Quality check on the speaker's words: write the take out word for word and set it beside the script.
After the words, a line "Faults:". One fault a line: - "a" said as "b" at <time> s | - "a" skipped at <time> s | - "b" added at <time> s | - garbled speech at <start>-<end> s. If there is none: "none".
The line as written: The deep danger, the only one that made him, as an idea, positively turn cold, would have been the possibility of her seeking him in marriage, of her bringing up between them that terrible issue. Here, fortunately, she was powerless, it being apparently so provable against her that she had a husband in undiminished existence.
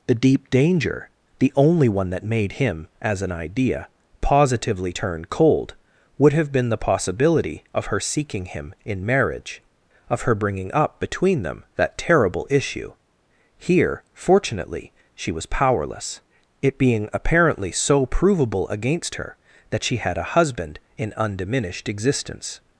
The deep danger, the only one that made him, as an idea, positively turn cold, would have been the possibility of her seeking him in marriage, of her bringing up between them that terrible issue. Here, fortunately, she was powerless, it being apparently so provable against her that she had a husband in undiminished existence.
Faults:
none